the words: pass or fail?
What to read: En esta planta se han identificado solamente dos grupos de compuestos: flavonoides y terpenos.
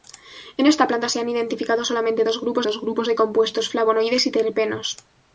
fail